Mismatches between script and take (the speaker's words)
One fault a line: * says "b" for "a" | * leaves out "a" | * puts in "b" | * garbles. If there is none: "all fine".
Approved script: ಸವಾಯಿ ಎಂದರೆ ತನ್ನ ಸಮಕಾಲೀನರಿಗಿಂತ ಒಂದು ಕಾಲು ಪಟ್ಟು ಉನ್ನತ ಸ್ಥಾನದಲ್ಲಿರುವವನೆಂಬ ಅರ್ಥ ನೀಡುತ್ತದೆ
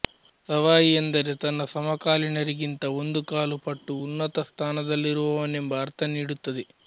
all fine